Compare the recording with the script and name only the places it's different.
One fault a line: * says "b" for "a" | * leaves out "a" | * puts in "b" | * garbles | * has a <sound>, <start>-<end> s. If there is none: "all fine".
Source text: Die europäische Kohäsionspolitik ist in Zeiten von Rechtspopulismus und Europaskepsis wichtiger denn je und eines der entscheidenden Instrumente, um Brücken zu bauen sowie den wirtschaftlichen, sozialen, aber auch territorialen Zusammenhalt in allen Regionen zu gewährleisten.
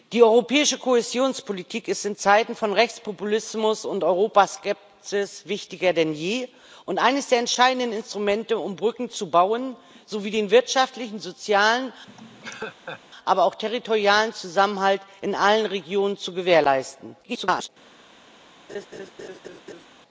* has a laugh, 12.1-13.0 s
* garbles
* has a laugh, 18.7-19.9 s